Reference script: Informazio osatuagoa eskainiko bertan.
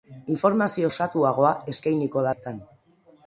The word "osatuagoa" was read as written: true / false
true